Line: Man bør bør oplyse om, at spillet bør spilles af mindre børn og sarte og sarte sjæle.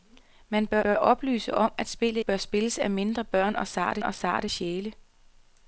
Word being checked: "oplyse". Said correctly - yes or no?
yes